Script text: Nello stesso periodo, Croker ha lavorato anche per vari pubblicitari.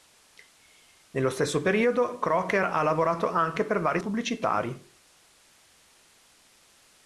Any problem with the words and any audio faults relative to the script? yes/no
no